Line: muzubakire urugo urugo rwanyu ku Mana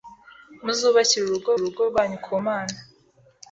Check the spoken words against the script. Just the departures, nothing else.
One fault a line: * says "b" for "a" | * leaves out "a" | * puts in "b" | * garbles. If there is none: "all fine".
all fine